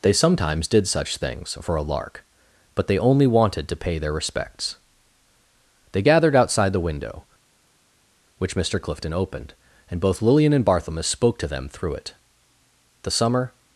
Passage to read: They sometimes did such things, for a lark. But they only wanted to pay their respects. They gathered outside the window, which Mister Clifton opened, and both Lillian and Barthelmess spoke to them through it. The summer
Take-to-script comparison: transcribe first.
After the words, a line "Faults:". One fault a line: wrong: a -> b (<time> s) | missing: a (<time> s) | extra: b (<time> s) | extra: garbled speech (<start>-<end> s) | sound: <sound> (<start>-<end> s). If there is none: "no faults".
They sometimes did such things, for a lark. But they only wanted to pay their respects. They gathered outside the window, which Mister Clifton opened, and both Lillian and Barthelmess spoke to them through it. The summer
Faults:
no faults